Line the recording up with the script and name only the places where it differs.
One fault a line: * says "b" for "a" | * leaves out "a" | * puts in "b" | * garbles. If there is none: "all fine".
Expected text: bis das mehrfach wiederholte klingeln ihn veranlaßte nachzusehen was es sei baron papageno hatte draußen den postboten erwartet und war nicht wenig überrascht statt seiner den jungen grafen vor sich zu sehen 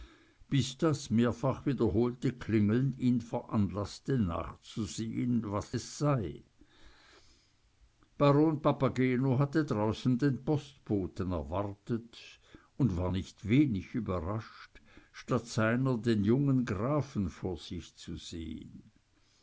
all fine